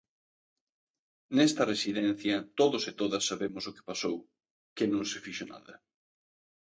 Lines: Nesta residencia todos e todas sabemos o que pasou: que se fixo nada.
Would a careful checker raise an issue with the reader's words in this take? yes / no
yes